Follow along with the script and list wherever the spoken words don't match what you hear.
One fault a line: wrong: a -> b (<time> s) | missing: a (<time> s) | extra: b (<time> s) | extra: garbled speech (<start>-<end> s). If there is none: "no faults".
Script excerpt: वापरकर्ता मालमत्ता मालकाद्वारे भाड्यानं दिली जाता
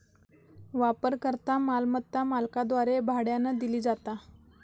no faults